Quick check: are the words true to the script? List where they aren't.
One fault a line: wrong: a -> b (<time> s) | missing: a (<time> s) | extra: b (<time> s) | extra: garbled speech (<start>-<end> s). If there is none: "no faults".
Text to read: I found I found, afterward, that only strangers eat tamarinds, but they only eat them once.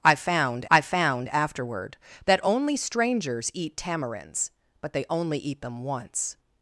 no faults